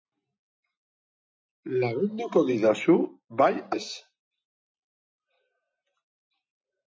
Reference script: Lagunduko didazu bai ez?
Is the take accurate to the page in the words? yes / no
yes